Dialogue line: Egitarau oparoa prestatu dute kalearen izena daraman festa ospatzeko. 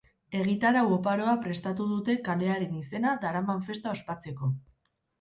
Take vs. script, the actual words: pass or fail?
pass